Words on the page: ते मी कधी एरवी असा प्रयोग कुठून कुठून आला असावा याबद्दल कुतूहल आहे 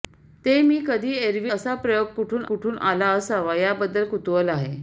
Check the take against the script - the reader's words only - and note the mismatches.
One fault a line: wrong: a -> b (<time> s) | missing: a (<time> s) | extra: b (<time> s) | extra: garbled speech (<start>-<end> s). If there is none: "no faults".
no faults